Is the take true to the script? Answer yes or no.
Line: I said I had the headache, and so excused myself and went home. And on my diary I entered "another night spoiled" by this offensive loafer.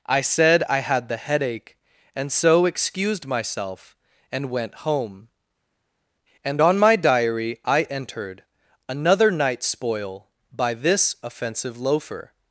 no